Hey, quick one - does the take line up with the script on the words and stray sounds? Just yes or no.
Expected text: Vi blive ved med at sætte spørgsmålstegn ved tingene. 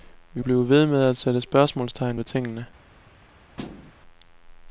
no